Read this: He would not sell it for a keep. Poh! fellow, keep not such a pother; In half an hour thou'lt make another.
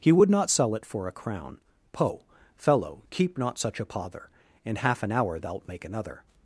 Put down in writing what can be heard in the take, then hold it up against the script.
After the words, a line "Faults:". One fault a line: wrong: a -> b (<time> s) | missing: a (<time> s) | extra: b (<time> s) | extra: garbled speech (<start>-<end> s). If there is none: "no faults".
He would not sell it for a crown. Poh! fellow, keep not such a pother; In half an hour thou'lt make another.
Faults:
wrong: keep -> crown (1.1 s)